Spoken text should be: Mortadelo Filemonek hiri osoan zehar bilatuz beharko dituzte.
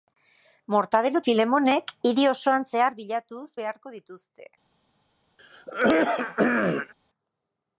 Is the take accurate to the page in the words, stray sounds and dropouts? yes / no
no